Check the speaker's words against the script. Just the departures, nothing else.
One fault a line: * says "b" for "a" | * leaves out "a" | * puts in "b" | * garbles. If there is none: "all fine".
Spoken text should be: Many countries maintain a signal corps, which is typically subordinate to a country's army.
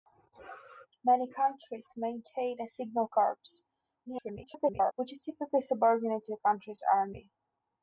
* garbles